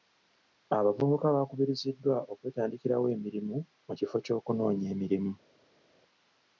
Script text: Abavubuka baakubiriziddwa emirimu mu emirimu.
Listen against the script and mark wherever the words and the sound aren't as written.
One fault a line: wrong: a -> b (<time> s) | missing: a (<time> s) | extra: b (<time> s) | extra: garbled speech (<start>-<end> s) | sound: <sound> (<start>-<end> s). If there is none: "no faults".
extra: okwetandikirawo (2.3 s)
extra: kifo ky'okunoonya (4.0 s)